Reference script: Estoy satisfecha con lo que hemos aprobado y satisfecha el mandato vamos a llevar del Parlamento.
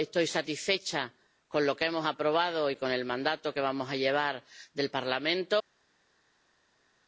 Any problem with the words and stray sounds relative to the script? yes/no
yes